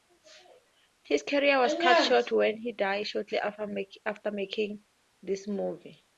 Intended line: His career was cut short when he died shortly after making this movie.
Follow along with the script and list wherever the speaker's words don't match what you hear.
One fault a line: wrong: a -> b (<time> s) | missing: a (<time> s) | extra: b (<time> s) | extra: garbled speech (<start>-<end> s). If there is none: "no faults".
no faults